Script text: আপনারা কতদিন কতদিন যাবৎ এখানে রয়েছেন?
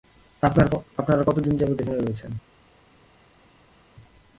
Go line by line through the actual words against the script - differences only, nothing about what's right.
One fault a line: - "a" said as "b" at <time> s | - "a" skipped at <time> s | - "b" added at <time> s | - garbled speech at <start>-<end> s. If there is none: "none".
- "কতদিন" skipped at 1.5 s